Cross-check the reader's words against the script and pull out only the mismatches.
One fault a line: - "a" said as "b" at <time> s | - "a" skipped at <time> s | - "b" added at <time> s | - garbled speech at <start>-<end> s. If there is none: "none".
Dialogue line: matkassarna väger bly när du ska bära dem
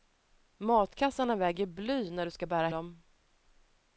none